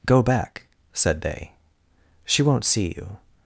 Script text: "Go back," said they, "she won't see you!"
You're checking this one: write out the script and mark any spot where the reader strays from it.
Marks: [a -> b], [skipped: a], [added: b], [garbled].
"Go back," said they, "she won't see you!"